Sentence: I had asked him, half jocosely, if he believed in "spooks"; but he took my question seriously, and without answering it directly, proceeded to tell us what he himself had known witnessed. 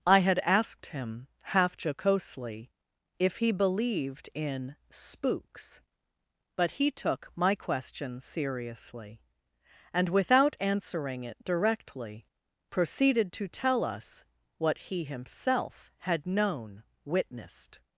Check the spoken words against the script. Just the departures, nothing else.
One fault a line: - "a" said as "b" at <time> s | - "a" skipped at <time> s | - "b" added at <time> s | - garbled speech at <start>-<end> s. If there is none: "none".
none